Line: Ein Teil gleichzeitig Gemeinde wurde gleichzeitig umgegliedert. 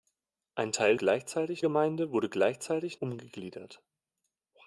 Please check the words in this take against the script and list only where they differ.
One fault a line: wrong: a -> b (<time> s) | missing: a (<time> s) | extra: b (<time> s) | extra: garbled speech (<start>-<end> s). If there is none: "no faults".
no faults